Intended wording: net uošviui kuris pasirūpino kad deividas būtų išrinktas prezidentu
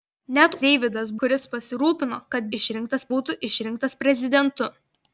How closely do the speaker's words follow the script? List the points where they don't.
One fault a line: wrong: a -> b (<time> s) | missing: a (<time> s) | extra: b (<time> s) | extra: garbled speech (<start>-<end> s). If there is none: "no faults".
wrong: uošviui -> deividas (0.7 s)
wrong: deividas -> išrinktas (2.6 s)